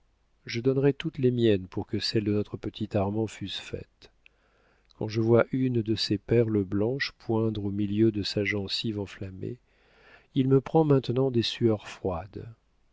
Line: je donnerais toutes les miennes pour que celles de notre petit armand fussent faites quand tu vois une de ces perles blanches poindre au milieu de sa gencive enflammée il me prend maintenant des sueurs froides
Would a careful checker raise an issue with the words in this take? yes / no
yes